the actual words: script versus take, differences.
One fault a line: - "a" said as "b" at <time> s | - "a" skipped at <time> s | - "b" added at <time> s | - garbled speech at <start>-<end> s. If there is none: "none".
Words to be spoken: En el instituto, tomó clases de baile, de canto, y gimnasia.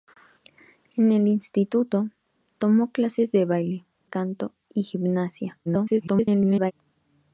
- "de" skipped at 3.9 s
- garbled speech at 5.7-6.7 s